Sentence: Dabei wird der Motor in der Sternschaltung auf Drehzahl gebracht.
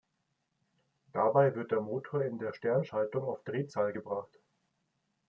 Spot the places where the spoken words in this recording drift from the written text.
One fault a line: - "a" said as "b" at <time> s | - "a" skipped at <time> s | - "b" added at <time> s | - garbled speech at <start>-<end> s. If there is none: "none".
none